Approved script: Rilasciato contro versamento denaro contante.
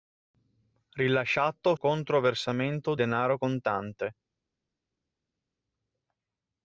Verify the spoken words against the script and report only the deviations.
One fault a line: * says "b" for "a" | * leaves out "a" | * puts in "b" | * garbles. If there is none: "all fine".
all fine